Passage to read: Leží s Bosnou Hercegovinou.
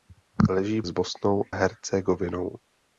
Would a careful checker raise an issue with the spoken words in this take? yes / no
no